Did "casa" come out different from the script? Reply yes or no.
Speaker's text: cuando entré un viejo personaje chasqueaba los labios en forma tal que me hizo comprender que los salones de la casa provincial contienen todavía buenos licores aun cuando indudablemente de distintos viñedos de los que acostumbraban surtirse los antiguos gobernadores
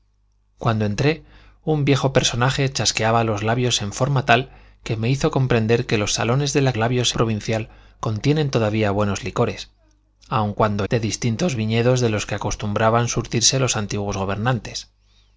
yes